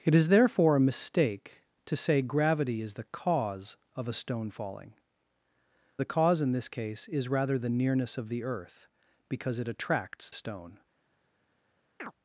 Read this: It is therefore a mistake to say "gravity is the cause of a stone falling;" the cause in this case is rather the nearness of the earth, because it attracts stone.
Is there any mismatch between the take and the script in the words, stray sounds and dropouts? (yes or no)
yes